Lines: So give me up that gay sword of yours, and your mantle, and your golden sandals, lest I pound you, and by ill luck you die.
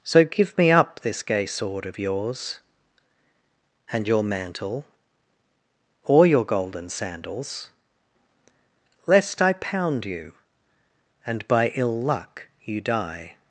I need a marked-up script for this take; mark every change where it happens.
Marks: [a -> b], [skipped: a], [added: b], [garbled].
So give me up [that -> this] gay sword of yours, and your mantle, [and -> or] your golden sandals, lest I pound you, and by ill luck you die.